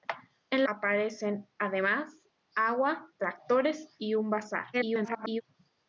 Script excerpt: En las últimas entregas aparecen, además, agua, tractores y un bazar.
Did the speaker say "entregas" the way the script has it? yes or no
no